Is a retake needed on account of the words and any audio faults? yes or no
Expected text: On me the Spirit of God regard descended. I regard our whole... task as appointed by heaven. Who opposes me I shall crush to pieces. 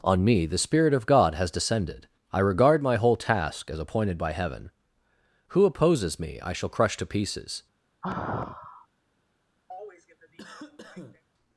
yes